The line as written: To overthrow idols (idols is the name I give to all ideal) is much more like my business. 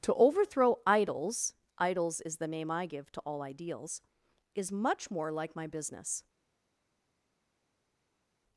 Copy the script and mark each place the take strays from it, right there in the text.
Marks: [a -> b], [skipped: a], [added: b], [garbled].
To overthrow idols (idols is the name I give to all [ideal) -> ideals] is much more like my business.